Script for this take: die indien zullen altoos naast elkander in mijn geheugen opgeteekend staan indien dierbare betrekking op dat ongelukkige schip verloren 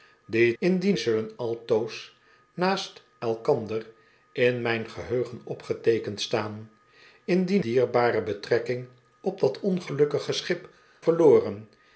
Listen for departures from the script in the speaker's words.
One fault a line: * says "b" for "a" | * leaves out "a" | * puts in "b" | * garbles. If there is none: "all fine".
all fine